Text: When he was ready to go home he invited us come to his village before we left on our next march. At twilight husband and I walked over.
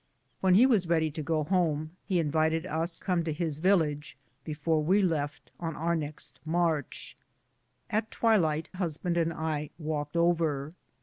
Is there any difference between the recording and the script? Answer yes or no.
no